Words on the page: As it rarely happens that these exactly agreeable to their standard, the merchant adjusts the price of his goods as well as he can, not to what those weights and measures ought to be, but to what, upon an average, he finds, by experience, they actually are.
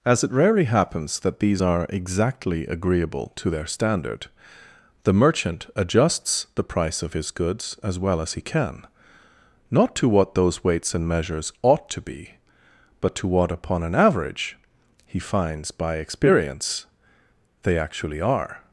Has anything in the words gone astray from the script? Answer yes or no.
yes